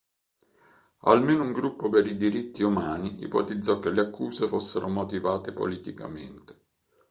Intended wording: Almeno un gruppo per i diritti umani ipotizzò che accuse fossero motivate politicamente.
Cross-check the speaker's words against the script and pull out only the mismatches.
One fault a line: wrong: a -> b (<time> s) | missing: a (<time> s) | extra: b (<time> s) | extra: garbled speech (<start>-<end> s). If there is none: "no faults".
extra: le (3.9 s)